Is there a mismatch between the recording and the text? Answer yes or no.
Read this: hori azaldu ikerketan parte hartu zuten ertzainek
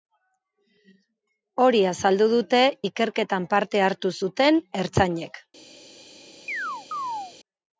yes